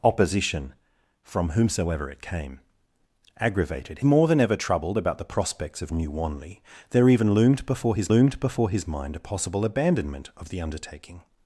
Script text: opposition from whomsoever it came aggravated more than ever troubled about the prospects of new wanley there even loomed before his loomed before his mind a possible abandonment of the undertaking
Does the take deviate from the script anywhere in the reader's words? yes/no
no